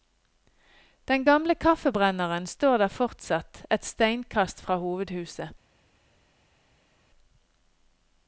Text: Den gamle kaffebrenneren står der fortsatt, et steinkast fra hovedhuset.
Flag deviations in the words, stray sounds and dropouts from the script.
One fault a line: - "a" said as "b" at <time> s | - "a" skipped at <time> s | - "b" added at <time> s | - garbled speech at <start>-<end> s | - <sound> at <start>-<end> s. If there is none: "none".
none